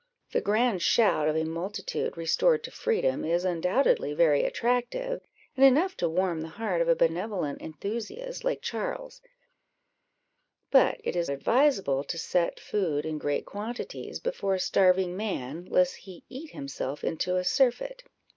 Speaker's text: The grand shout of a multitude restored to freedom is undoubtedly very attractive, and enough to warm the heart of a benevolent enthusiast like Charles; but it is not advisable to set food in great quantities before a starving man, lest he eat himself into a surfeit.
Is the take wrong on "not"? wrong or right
wrong